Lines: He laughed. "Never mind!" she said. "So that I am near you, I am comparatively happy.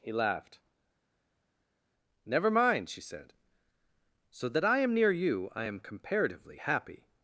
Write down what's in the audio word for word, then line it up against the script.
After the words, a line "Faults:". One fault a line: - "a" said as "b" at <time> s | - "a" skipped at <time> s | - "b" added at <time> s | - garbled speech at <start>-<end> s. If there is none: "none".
He laughed. "Never mind!" she said. "So that I am near you, I am comparatively happy.
Faults:
none